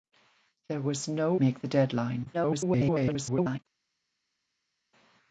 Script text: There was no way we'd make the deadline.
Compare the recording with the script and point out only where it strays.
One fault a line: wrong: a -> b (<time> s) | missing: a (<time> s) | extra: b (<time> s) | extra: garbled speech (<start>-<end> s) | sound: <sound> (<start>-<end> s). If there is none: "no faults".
missing: way we'd (1.4 s)
extra: garbled speech (2.3-3.6 s)